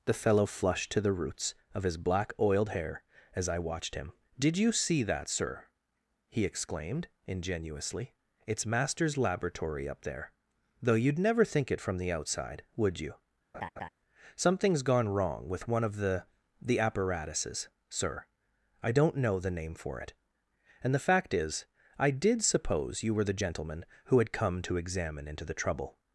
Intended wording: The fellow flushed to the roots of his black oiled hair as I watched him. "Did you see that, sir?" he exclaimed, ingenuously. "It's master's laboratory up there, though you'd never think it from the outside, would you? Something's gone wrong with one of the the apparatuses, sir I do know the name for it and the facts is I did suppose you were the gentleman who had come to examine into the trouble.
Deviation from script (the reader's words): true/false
true